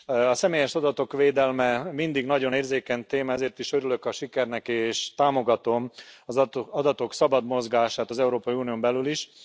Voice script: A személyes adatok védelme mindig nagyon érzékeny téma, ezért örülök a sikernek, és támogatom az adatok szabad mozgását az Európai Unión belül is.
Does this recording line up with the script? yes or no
no